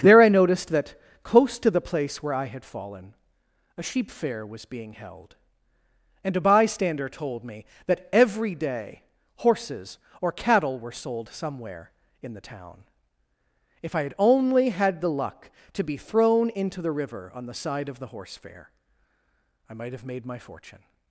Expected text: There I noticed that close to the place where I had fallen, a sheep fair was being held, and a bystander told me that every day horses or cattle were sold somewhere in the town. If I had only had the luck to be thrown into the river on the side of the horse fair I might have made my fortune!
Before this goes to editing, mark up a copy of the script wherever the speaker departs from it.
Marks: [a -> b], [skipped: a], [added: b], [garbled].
There I noticed that close to the place where I had fallen, a sheep fair was being held, and a bystander told me that every day horses or cattle were sold somewhere in the town. If I had only had the luck to be thrown into the river on the side of the horse fair I might have made my fortune!